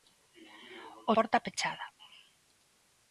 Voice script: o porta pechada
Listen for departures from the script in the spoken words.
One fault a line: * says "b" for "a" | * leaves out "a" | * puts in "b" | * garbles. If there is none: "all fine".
all fine